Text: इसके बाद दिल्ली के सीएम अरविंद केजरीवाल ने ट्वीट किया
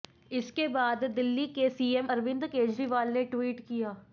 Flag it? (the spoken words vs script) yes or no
no